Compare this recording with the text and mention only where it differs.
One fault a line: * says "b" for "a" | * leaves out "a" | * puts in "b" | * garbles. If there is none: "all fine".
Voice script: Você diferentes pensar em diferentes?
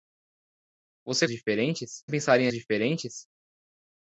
all fine